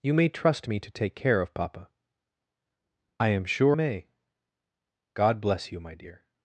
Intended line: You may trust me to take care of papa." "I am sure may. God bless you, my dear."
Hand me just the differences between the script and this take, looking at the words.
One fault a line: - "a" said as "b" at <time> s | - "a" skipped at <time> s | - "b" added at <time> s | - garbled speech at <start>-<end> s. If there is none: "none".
none